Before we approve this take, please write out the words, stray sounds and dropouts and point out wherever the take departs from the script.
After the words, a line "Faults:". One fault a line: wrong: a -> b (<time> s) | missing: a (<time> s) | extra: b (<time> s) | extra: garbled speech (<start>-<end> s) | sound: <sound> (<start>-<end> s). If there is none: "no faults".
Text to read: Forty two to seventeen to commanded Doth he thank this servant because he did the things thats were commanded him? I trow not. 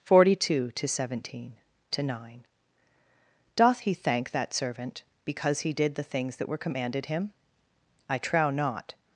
Forty two to seventeen to nine Doth he thank that servant because he did the things that were commanded him? I trow not.
Faults:
wrong: commanded -> nine (2.0 s)
wrong: this -> that (4.3 s)
wrong: thats -> that (6.4 s)